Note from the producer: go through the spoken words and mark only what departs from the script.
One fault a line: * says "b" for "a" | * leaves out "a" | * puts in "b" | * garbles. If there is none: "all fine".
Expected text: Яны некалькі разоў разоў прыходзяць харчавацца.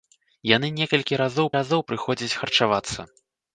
all fine